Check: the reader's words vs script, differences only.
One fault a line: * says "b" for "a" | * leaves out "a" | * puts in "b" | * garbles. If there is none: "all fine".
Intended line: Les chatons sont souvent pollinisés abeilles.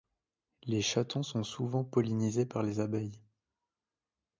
* puts in "par les"